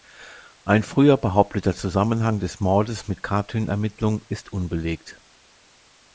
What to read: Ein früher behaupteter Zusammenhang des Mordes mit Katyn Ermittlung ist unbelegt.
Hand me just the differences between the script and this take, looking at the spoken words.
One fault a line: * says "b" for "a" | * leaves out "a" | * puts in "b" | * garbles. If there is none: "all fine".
all fine